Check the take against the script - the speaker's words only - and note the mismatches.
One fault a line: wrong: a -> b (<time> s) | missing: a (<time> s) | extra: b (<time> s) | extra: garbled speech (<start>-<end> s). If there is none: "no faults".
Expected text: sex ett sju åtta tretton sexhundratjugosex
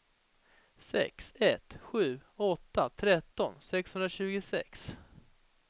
no faults